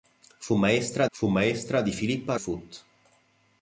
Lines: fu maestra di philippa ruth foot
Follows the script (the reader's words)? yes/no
no